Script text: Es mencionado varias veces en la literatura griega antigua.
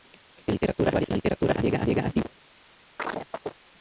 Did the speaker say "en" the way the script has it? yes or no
no